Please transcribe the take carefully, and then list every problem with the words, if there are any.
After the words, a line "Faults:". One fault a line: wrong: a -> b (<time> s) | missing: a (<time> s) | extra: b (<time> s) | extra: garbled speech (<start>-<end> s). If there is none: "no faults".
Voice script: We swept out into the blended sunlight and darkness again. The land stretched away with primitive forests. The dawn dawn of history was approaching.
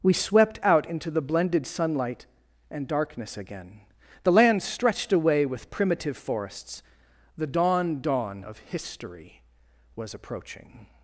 We swept out into the blended sunlight and darkness again. The land stretched away with primitive forests. The dawn dawn of history was approaching.
Faults:
no faults